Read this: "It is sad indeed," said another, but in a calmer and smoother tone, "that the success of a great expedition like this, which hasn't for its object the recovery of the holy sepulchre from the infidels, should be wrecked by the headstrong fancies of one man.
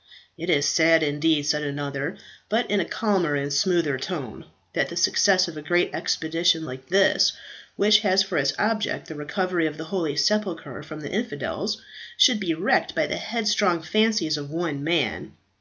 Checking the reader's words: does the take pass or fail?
fail